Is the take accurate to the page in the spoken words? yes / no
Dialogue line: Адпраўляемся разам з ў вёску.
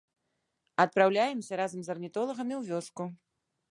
no